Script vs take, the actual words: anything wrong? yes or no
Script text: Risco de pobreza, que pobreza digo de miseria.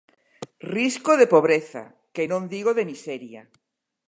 yes